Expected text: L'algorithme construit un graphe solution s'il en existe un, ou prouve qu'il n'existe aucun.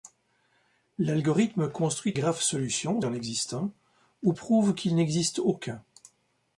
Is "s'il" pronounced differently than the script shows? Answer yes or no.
yes